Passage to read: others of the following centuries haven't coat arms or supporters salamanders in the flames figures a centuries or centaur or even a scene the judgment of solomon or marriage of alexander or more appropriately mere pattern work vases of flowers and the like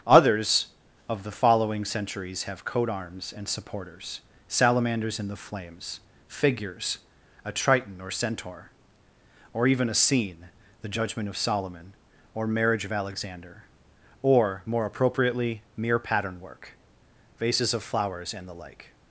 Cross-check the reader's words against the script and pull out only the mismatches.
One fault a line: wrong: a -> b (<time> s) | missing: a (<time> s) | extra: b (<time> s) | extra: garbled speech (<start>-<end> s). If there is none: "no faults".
wrong: haven't -> have (2.4 s)
wrong: or -> and (3.4 s)
wrong: centuries -> triton (7.5 s)